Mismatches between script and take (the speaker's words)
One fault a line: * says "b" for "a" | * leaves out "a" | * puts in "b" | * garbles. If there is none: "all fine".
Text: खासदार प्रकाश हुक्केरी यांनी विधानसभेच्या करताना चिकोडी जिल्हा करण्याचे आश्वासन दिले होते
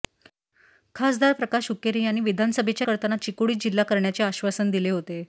all fine